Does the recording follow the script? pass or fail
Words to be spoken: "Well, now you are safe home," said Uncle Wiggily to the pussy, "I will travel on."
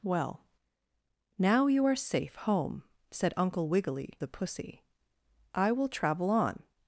fail